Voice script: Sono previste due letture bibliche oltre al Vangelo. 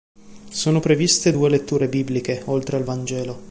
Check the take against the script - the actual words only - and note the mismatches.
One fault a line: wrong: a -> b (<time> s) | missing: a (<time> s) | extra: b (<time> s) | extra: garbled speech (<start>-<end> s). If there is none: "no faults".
no faults